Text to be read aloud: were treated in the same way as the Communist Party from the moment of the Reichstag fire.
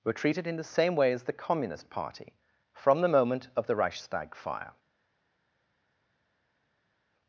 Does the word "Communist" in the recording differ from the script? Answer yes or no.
no